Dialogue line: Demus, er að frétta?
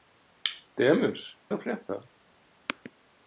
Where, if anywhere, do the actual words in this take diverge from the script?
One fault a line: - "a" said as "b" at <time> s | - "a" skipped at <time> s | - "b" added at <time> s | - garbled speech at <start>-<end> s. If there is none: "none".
none